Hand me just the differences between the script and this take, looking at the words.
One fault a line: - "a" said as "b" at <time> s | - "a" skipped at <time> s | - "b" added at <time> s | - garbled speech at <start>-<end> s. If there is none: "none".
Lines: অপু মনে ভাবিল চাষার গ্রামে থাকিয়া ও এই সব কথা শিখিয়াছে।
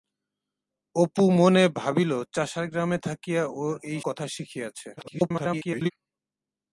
- "সব" skipped at 4.0 s
- garbled speech at 5.0-5.9 s